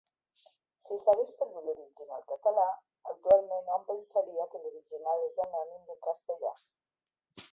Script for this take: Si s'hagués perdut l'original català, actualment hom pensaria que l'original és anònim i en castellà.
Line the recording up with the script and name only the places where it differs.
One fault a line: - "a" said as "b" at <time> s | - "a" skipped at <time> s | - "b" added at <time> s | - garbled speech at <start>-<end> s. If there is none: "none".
none